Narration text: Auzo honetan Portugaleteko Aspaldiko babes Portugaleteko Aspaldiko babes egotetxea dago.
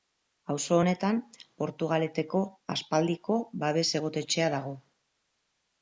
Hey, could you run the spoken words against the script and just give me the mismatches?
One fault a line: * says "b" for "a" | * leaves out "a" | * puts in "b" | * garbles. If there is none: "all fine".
* leaves out "Portugaleteko Aspaldiko babes"